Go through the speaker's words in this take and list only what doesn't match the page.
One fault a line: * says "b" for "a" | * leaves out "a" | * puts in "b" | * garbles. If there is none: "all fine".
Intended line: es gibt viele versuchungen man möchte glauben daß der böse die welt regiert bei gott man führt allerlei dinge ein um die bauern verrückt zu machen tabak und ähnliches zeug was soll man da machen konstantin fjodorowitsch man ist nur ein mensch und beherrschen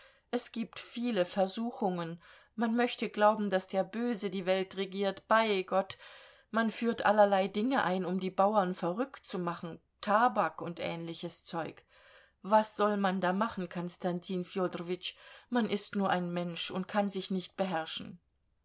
* puts in "kann sich nicht"